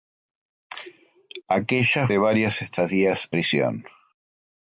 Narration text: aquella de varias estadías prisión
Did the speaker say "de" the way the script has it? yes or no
yes